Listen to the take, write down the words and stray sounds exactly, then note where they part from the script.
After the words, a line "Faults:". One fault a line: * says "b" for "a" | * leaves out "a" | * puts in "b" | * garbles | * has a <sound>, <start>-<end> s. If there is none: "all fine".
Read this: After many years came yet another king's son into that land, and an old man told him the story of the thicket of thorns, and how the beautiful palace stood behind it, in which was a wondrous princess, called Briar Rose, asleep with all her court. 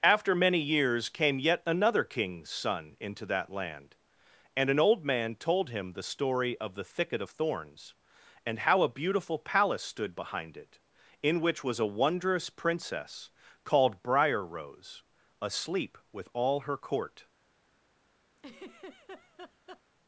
After many years came yet another king's son into that land, and an old man told him the story of the thicket of thorns, and how a beautiful palace stood behind it, in which was a wondrous princess, called Briar Rose, asleep with all her court.
Faults:
* says "a" for "the"
* has a laugh, 18.4-19.8 s